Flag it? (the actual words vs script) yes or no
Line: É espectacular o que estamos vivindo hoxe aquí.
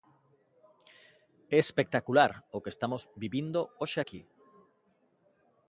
no